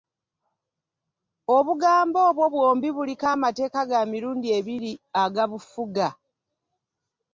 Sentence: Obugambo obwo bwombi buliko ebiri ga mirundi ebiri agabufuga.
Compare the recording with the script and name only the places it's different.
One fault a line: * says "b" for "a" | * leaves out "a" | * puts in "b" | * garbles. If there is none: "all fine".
* says "amateeka" for "ebiri"